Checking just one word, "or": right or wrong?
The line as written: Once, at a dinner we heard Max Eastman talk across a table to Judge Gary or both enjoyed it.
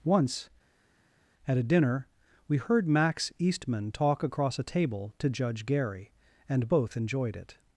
wrong